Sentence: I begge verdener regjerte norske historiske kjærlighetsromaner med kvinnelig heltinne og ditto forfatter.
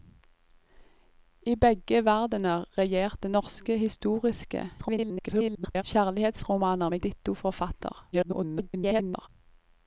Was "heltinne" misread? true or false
true